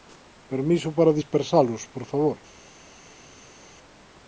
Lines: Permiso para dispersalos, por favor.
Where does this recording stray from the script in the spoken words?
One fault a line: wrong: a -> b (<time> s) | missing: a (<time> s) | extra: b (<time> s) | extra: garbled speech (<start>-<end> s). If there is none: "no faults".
no faults